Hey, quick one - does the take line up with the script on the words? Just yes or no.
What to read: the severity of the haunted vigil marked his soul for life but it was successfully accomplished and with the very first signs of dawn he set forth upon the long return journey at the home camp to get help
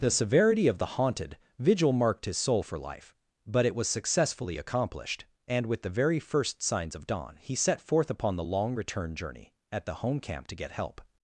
yes